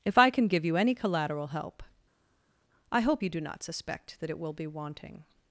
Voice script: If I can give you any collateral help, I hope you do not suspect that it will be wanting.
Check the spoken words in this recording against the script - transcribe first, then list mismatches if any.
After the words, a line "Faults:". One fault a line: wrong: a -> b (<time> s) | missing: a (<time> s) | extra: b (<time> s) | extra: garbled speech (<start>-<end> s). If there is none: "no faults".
If I can give you any collateral help, I hope you do not suspect that it will be wanting.
Faults:
no faults